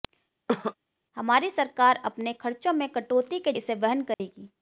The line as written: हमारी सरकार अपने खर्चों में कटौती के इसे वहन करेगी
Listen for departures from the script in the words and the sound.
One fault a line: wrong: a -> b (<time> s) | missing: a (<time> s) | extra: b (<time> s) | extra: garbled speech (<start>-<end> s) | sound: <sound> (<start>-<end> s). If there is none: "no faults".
sound: cough (0.5-0.7 s)
sound: dropout (4.1-4.2 s)